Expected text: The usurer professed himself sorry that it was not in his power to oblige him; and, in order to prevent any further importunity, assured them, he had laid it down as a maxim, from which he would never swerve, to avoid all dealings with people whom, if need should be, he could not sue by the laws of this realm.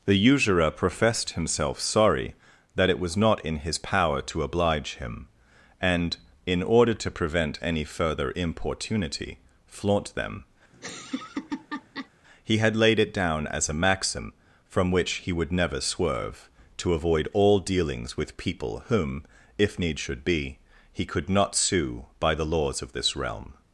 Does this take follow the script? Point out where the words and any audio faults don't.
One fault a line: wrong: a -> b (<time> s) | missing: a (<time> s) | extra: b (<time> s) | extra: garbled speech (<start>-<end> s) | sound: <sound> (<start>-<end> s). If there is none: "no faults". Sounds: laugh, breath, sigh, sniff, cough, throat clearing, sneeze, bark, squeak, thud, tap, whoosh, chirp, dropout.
wrong: assured -> flaunt (9.7 s)
sound: laugh (10.7-12.1 s)